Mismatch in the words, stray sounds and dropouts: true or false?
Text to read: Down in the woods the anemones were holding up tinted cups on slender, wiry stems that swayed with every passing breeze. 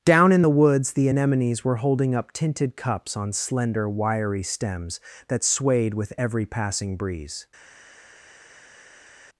false